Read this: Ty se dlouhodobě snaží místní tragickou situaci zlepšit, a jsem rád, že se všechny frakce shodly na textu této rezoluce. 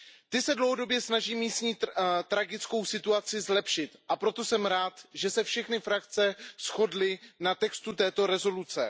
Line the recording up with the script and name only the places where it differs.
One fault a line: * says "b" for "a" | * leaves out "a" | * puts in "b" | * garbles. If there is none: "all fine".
* puts in "proto"